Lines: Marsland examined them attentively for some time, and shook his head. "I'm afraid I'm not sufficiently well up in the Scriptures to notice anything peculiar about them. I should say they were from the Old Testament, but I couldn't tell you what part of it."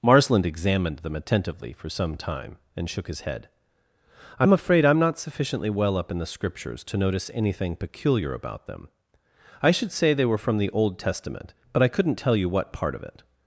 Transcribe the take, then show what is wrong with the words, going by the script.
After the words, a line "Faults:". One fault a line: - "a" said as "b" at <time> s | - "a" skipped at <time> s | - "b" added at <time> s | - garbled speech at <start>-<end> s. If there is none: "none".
Marsland examined them attentively for some time, and shook his head. "I'm afraid I'm not sufficiently well up in the Scriptures to notice anything peculiar about them. I should say they were from the Old Testament, but I couldn't tell you what part of it."
Faults:
none